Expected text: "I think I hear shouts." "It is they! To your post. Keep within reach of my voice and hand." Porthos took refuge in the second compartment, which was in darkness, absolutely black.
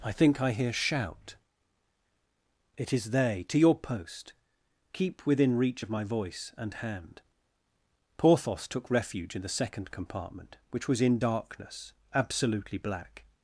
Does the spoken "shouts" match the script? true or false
false